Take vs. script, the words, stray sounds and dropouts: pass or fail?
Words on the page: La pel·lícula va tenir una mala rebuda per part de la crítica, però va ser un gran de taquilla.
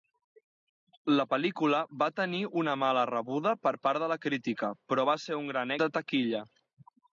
pass